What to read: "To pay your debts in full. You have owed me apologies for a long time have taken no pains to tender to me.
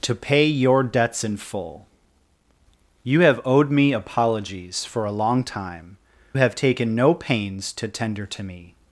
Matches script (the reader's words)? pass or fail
pass